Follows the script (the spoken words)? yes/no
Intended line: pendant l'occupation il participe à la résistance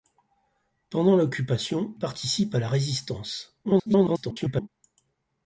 no